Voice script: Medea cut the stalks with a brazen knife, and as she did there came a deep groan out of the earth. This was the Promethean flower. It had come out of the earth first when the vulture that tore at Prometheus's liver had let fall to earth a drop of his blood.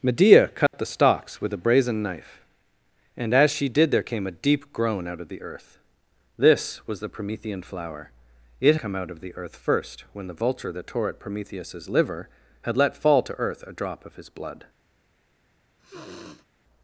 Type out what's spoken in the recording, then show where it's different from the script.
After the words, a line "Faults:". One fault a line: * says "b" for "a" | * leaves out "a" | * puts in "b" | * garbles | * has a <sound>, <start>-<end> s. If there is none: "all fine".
Medea cut the stalks with a brazen knife, and as she did there came a deep groan out of the earth. This was the Promethean flower. It come out of the earth first when the vulture that tore at Prometheus's liver had let fall to earth a drop of his blood.
Faults:
* has a dropout, 0.7-0.7 s
* leaves out "had"
* has a sniff, 15.8-16.5 s